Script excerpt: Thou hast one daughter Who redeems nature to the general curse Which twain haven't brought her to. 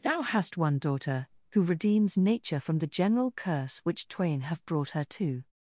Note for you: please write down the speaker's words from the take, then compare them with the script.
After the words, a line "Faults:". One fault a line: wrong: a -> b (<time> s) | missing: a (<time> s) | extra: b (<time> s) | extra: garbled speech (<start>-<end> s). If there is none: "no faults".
Thou hast one daughter Who redeems nature from the general curse Which twain have brought her to.
Faults:
wrong: to -> from (2.6 s)
wrong: haven't -> have (4.4 s)